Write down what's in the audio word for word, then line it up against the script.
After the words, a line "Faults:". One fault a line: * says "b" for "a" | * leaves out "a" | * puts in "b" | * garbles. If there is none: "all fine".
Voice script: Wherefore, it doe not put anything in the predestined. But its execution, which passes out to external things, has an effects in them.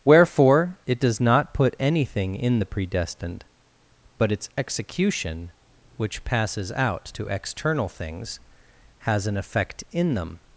Wherefore, it does not put anything in the predestined. But its execution, which passes out to external things, has an effect in them.
Faults:
* says "does" for "doe"
* says "effect" for "effects"